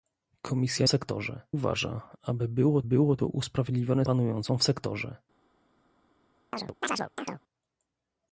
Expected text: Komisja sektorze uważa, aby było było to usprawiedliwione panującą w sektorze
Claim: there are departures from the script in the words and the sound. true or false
true